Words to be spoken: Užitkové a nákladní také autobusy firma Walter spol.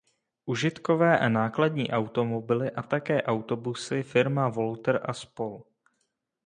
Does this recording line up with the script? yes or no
no